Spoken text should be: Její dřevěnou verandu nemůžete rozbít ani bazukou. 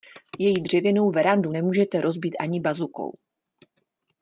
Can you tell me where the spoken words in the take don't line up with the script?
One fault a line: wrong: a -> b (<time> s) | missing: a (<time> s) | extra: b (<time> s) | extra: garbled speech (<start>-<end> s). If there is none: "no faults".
no faults